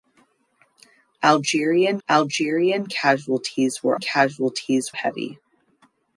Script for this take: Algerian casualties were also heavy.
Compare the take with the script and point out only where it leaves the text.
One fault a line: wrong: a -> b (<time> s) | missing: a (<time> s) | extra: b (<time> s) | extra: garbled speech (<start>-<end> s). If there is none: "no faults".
extra: algerian (2.1 s)
wrong: also -> casualties (4.0 s)